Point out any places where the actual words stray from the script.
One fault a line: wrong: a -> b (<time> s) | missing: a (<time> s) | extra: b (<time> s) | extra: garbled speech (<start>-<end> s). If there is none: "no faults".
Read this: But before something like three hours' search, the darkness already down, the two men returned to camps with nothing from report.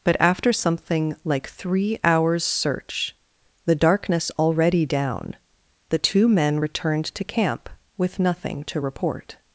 wrong: before -> after (0.2 s)
wrong: camps -> camp (7.2 s)
wrong: from -> to (8.7 s)